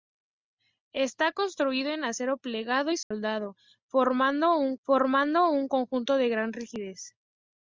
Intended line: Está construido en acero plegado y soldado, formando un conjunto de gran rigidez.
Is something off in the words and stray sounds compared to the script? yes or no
yes